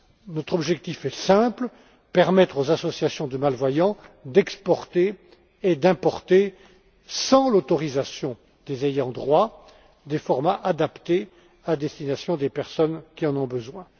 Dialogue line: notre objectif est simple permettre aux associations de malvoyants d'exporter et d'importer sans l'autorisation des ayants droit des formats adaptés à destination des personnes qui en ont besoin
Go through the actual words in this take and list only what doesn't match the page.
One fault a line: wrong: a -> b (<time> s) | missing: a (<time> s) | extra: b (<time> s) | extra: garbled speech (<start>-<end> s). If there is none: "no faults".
no faults